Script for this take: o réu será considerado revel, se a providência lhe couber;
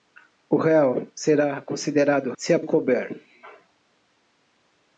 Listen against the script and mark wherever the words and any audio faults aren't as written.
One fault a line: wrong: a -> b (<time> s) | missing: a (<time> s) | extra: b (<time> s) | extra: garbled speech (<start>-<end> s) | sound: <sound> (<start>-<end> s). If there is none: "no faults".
missing: revel (2.3 s)
missing: providência lhe (2.6 s)